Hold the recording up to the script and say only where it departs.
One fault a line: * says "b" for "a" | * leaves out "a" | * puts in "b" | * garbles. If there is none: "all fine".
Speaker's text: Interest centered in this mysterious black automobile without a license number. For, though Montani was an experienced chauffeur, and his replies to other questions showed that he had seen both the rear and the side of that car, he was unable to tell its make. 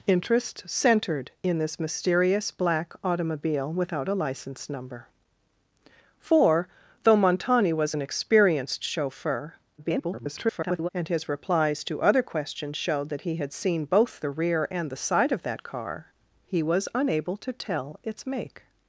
* garbles